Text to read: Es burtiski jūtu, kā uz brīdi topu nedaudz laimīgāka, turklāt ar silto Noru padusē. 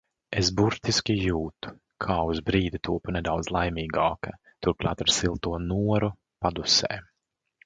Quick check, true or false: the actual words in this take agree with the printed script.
true